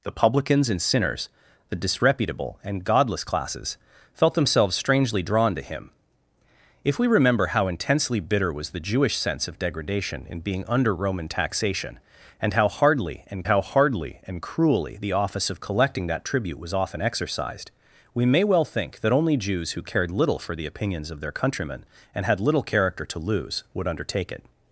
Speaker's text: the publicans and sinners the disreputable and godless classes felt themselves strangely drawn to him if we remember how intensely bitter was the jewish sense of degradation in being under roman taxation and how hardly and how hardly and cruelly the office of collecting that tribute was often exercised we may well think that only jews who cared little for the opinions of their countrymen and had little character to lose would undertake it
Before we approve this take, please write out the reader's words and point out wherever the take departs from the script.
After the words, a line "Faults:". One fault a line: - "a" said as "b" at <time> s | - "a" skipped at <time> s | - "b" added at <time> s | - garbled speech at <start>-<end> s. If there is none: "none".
the publicans and sinners the disreputable and godless classes felt themselves strangely drawn to him if we remember how intensely bitter was the jewish sense of degradation in being under roman taxation and how hardly and how hardly and cruelly the office of collecting that tribute was often exercised we may well think that only jews who cared little for the opinions of their countrymen and had little character to lose would undertake it
Faults:
none